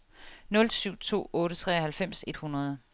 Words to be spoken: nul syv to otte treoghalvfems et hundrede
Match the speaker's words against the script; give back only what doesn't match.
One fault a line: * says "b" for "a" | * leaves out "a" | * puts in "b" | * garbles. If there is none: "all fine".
all fine